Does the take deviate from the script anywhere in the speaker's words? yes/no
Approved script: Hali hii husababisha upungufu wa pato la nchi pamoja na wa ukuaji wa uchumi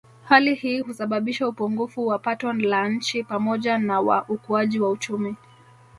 no